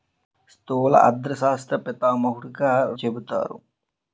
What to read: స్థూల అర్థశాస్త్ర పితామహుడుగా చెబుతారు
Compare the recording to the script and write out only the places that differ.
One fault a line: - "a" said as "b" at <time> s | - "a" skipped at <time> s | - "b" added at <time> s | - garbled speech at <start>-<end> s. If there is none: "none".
none